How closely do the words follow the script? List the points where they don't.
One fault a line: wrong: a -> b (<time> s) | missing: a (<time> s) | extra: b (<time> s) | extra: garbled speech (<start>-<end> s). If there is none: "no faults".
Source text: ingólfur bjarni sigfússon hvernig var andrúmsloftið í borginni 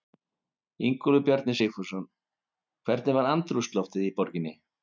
no faults